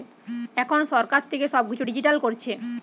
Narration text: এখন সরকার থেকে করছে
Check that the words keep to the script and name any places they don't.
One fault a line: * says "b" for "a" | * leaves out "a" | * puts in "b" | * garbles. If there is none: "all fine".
* puts in "সব কিছু ডিজিটাল"